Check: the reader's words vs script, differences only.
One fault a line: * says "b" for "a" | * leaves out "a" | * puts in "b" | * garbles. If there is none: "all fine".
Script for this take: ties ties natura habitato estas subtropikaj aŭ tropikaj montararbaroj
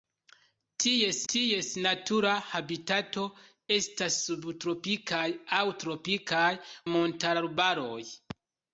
all fine